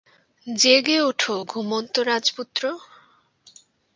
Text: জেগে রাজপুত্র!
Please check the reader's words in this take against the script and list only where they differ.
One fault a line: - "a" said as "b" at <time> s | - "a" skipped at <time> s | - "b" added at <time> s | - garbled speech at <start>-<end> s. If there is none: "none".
- "ওঠো ঘুমন্ত" added at 1.0 s